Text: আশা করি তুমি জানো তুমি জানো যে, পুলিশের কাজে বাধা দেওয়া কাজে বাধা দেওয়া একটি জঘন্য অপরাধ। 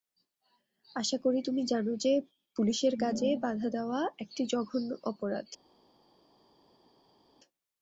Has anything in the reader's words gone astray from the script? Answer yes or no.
yes